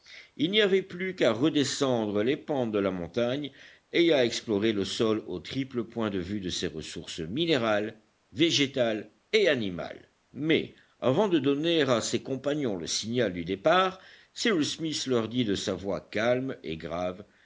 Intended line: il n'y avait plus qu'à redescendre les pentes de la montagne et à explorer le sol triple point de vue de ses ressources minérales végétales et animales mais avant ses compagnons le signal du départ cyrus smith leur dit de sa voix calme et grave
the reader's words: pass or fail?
fail